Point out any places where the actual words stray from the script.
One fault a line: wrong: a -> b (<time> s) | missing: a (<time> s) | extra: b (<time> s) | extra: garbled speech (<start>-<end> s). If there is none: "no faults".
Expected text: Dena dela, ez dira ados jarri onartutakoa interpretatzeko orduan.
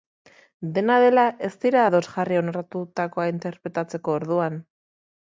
no faults